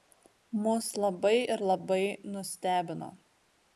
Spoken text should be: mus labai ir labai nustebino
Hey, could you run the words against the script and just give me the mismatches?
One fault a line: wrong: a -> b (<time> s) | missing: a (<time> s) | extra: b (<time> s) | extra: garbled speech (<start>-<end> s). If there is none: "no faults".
no faults